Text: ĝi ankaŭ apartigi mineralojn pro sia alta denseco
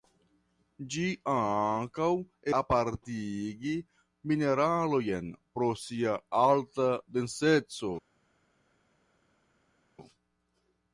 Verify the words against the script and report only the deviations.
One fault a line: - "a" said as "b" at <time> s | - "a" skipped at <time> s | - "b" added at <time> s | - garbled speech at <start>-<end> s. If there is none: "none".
none